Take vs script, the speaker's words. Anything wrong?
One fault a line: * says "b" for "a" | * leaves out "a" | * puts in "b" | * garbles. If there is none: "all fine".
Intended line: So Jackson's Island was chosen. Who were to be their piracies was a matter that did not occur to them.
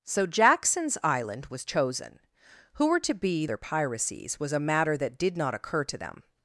all fine